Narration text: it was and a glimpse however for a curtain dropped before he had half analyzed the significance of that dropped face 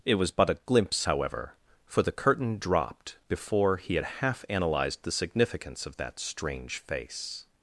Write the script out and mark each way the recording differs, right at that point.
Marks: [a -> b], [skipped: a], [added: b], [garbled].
it was [and -> but] a glimpse however for [a -> the] curtain dropped before he had half analyzed the significance of that [dropped -> strange] face